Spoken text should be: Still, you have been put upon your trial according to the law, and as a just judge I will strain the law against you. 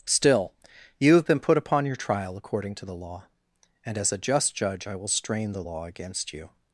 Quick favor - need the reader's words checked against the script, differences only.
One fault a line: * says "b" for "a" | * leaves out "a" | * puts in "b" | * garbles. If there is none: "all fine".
all fine